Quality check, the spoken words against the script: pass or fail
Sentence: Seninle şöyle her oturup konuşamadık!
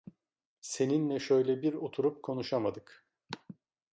fail